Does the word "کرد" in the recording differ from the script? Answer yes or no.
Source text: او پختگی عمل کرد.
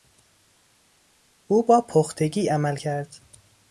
no